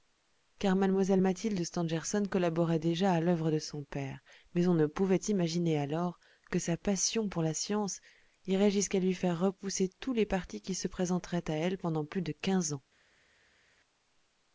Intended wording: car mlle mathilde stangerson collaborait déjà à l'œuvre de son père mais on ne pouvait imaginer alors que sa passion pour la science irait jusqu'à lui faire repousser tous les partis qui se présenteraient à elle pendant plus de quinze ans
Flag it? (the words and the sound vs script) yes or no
no